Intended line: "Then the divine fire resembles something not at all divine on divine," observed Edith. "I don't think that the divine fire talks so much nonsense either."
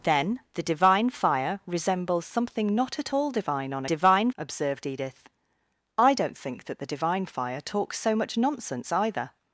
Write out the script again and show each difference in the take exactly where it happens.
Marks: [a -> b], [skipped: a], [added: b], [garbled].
"Then the divine fire resembles something not at all divine on divine," observed Edith. "I don't think that the divine fire talks so much nonsense either."